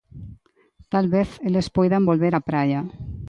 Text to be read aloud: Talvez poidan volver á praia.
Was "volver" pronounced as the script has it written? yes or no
yes